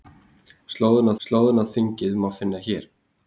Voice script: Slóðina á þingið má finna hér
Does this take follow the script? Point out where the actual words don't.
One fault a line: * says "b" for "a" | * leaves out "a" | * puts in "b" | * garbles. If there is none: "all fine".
* puts in "slóðina"